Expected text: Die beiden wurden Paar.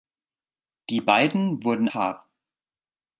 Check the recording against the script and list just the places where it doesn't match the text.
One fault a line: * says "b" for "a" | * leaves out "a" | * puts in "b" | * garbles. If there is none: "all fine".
all fine